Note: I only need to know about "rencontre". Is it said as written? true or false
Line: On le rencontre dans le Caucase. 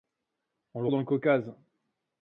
false